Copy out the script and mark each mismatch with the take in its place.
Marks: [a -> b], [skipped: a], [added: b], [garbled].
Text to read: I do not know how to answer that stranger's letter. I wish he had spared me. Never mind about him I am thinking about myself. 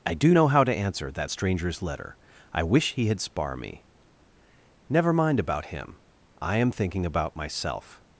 I do [skipped: not] know how to answer that stranger's letter. I wish he had [spared -> spar] me. Never mind about him I am thinking about myself.